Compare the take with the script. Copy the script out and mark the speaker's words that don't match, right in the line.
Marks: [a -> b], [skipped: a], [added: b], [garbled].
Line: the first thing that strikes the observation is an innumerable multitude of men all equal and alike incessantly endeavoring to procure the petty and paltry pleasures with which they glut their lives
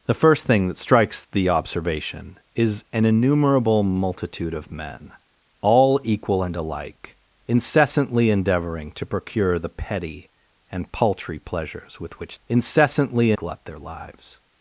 the first thing that strikes the observation is an innumerable multitude of men all equal and alike incessantly endeavoring to procure the petty and paltry pleasures with which [they -> incessantly] glut their lives